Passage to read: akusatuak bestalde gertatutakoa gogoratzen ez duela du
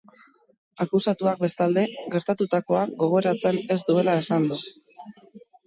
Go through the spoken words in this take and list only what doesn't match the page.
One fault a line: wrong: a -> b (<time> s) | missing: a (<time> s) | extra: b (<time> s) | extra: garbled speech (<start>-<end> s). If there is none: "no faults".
extra: esan (4.2 s)